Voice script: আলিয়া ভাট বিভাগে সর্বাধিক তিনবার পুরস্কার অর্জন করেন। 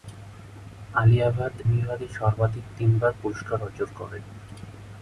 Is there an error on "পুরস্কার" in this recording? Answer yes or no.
no